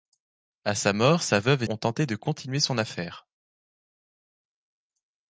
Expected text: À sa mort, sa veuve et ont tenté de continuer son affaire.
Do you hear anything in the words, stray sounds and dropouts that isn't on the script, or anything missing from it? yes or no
no